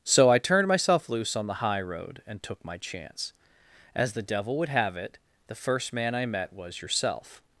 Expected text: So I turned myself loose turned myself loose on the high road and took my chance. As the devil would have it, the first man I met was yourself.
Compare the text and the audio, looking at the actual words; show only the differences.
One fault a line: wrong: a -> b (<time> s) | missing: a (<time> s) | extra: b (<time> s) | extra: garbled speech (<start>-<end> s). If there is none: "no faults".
missing: turned myself loose (1.4 s)